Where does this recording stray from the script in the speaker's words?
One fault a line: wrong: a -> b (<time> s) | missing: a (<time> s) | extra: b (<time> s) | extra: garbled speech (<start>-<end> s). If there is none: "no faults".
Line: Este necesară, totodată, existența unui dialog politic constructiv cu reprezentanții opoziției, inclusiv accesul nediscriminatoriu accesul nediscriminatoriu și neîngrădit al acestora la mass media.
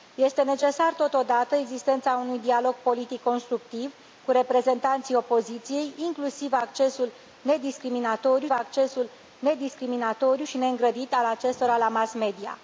no faults